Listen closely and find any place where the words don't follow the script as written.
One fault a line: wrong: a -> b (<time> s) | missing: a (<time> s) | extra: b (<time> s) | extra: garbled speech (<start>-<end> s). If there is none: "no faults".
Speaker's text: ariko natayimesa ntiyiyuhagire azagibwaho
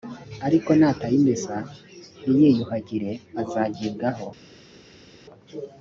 no faults